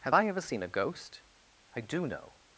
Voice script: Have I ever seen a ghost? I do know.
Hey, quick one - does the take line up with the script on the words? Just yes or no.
yes